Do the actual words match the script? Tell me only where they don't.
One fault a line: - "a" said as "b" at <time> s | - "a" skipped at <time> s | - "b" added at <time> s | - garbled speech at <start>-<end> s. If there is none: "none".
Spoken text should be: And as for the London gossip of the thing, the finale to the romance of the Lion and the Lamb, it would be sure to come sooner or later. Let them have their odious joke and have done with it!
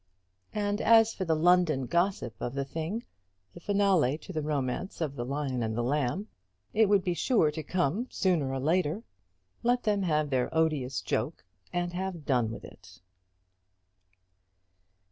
none